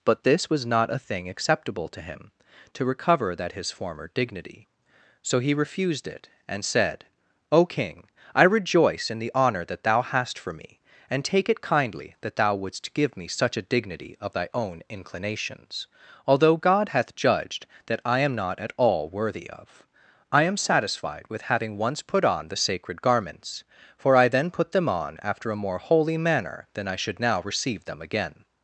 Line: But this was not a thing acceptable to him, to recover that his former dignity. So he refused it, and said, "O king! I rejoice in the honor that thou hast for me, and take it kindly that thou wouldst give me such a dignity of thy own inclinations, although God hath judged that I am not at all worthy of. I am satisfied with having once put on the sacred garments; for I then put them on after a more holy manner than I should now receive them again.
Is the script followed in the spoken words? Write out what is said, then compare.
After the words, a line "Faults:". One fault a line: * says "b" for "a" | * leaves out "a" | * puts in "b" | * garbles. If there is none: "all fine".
But this was not a thing acceptable to him, to recover that his former dignity. So he refused it, and said, "O king! I rejoice in the honor that thou hast for me, and take it kindly that thou wouldst give me such a dignity of thy own inclinations, although God hath judged that I am not at all worthy of. I am satisfied with having once put on the sacred garments; for I then put them on after a more holy manner than I should now receive them again.
Faults:
all fine